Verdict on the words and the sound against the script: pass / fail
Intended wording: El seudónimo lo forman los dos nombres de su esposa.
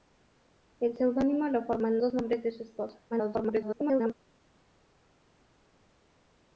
fail